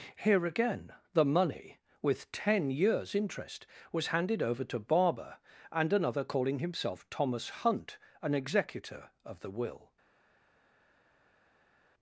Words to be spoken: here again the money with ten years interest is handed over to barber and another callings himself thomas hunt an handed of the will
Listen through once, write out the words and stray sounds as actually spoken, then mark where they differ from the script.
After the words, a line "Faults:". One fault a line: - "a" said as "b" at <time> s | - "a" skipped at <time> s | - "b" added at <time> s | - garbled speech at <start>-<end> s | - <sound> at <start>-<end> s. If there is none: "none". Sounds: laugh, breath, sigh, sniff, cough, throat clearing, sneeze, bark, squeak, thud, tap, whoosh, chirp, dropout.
here again the money with ten years interest was handed over to barber and another calling himself thomas hunt an executor of the will
Faults:
- "is" said as "was" at 3.9 s
- "callings" said as "calling" at 6.2 s
- "handed" said as "executor" at 8.3 s